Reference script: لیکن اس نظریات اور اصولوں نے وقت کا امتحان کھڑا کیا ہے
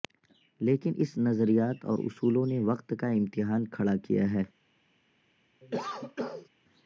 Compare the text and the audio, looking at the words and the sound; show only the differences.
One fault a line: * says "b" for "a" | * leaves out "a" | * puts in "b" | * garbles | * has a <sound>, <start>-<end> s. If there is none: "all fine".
* has a cough, 5.6-6.5 s